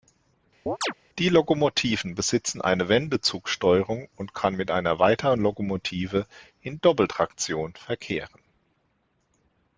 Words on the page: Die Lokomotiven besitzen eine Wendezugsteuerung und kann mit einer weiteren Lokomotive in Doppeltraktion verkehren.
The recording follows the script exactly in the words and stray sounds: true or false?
false